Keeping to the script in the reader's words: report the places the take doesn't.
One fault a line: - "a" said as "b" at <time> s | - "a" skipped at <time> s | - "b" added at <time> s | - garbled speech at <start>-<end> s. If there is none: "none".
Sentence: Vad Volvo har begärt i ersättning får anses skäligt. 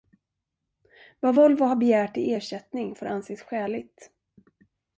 none